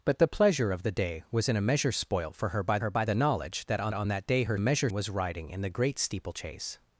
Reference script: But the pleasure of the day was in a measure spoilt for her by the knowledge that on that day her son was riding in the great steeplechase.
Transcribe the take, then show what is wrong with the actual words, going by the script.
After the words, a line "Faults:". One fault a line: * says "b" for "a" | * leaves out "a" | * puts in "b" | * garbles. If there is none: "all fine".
But the pleasure of the day was in a measure spoilt for her by her by the knowledge that on on that day her measure was riding in the great steeplechase.
Faults:
* puts in "her by"
* puts in "on"
* says "measure" for "son"